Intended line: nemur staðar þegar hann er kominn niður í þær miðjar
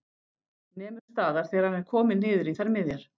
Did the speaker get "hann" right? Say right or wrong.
right